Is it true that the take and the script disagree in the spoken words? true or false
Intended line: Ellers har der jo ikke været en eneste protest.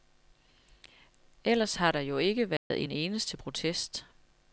false